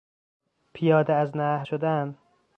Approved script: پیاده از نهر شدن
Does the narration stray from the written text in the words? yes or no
no